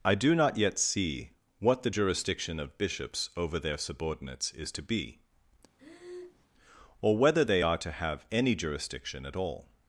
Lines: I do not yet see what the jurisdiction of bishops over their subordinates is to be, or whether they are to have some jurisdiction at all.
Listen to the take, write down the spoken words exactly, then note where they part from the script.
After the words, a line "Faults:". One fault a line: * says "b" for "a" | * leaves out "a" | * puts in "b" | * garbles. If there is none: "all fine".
I do not yet see what the jurisdiction of bishops over their subordinates is to be, or whether they are to have any jurisdiction at all.
Faults:
* says "any" for "some"